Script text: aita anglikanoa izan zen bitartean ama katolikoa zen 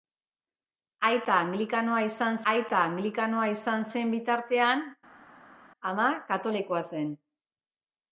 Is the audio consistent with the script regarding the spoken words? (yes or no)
no